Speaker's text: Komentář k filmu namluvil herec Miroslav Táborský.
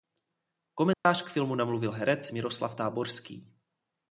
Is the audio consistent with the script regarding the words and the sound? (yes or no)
no